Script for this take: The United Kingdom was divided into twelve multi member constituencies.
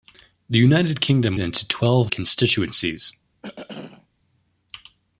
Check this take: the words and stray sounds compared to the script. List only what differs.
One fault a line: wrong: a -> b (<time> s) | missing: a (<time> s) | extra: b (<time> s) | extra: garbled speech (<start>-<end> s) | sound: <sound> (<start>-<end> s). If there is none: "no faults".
missing: was divided (1.4 s)
missing: multi member (2.1 s)
sound: throat clearing (3.4-4.1 s)